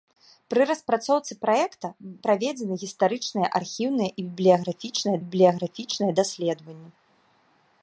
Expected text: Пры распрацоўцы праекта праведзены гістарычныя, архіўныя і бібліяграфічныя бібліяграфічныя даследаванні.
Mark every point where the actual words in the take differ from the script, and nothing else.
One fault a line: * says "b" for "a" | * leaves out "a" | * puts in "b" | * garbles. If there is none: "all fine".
all fine